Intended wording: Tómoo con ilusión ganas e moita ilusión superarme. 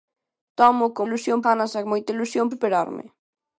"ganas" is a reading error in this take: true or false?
false